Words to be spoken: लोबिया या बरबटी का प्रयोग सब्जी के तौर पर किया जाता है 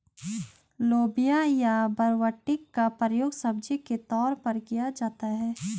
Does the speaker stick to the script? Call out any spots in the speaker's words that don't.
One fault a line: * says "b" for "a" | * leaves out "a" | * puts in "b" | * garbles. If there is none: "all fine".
all fine